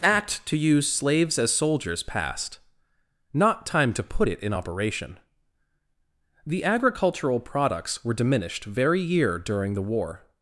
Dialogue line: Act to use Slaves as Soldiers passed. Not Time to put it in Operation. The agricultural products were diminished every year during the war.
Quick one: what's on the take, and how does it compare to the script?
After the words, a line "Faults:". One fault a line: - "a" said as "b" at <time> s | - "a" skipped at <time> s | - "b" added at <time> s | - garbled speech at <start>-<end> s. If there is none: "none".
Act to use Slaves as Soldiers passed. Not Time to put it in Operation. The agricultural products were diminished very year during the war.
Faults:
- "every" said as "very" at 8.6 s